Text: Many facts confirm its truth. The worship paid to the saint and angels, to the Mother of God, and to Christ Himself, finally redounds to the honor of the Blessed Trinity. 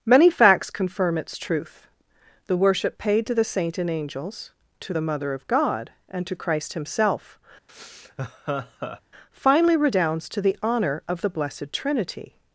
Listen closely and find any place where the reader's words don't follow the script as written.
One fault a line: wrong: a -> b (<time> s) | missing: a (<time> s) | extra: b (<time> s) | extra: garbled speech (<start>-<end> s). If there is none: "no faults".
no faults